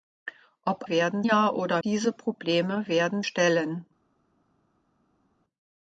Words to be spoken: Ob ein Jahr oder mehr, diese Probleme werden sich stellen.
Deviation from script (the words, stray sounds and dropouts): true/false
true